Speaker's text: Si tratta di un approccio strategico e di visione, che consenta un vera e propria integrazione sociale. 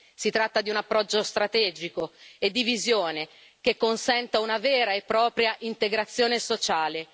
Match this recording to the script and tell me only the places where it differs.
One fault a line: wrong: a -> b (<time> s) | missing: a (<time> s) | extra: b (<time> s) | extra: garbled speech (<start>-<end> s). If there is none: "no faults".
wrong: un -> una (4.4 s)